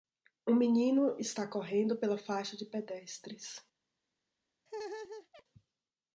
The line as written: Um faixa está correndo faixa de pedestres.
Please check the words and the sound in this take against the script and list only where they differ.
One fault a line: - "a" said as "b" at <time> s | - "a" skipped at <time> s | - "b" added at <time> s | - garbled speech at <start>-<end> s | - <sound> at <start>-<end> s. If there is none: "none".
- "faixa" said as "menino" at 0.6 s
- "pela" added at 1.9 s
- laugh at 4.7-5.4 s